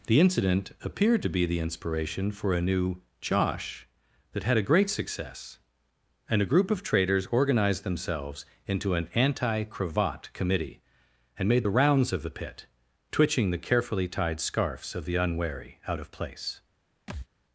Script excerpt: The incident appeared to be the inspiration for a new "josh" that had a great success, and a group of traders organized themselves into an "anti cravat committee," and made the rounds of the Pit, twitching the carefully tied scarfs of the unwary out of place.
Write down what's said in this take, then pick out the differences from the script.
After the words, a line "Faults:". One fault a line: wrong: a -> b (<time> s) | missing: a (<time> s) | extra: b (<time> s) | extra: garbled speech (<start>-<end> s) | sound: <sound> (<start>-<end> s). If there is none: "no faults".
The incident appeared to be the inspiration for a new "josh" that had a great success, and a group of traders organized themselves into an "anti cravat committee," and made the rounds of the Pit, twitching the carefully tied scarfs of the unwary out of place.
Faults:
sound: thud (17.1-17.3 s)